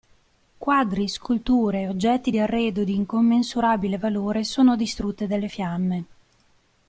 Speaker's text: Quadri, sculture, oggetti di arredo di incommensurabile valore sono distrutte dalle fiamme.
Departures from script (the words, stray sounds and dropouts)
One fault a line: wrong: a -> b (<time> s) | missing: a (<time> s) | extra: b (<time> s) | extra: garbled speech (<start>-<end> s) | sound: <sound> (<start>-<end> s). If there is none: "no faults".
no faults